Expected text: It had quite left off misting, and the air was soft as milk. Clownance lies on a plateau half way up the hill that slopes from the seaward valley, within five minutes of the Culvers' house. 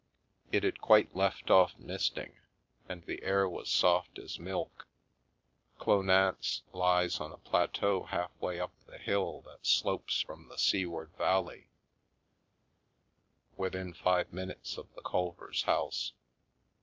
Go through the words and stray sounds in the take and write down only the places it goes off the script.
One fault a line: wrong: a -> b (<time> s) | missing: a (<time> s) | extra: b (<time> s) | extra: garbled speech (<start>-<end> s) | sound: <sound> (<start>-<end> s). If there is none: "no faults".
no faults